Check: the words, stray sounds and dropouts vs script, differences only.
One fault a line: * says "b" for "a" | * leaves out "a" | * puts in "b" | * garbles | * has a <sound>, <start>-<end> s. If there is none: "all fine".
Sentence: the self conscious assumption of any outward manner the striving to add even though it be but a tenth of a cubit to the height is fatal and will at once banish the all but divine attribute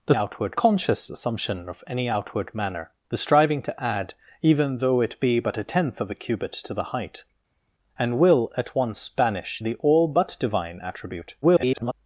* says "outward" for "self"
* leaves out "is fatal"
* garbles